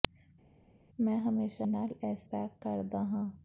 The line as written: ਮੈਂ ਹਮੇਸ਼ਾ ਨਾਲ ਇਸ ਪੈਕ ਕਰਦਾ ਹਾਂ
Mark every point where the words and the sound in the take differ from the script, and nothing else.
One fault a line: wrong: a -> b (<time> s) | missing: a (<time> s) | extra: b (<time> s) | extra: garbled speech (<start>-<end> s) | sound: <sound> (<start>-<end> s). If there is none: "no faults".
no faults